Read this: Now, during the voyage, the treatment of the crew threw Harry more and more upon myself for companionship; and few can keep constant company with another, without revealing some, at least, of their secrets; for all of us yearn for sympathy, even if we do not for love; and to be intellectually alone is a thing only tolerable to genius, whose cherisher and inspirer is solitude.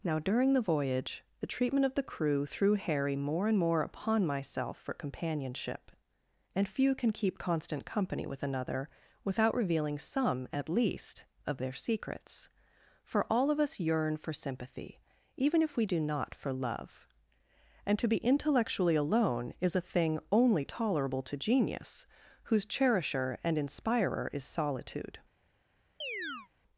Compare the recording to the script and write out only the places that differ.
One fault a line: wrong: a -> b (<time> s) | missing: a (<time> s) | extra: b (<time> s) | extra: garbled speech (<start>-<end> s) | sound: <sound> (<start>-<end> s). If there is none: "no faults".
sound: chirp (26.0-26.5 s)